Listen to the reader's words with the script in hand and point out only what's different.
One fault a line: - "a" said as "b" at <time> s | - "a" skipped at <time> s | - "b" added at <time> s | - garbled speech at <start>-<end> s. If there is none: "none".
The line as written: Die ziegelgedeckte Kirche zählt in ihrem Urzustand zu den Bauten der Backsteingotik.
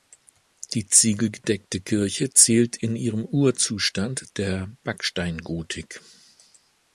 - "zu den Bauten" skipped at 4.3 s